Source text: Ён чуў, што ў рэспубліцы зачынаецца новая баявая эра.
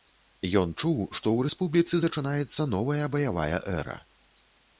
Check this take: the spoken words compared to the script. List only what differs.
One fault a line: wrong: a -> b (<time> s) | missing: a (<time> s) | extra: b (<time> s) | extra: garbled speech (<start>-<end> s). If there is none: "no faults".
no faults